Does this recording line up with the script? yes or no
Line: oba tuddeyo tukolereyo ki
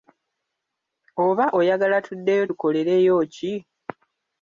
no